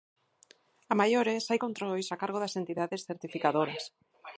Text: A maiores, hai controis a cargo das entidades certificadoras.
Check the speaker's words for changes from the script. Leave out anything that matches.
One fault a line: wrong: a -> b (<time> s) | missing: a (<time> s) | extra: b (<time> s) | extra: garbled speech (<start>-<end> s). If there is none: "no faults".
no faults